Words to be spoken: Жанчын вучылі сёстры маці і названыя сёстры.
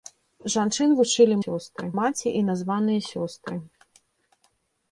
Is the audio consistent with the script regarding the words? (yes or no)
yes